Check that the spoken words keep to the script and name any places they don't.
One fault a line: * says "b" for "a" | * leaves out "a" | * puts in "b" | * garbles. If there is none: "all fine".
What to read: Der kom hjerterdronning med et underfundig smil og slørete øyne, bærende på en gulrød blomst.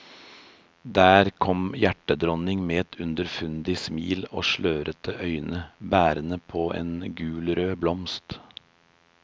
all fine